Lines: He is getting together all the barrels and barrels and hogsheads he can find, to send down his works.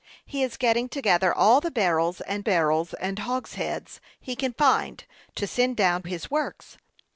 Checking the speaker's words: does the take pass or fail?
pass